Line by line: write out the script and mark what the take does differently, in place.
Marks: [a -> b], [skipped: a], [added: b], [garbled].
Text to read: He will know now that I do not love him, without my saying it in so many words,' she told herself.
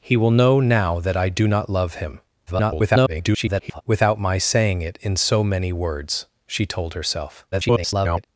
He will know now that I do not love him, [garbled] without my saying it in so many words,' she told herself. [garbled]